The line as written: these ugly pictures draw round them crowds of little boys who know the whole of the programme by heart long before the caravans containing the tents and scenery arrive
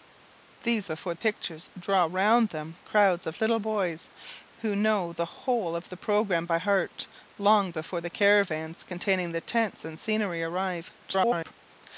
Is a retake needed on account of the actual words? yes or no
yes